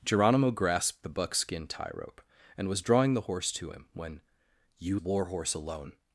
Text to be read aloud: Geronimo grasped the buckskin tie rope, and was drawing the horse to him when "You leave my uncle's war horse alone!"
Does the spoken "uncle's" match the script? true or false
false